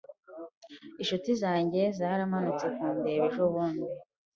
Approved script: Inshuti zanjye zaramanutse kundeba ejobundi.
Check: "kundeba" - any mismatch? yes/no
no